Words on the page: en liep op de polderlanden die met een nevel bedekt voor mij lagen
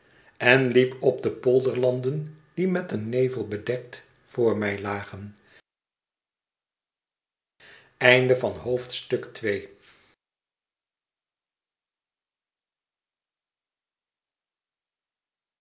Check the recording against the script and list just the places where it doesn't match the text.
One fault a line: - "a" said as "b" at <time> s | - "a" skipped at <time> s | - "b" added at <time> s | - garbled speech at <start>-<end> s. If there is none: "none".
none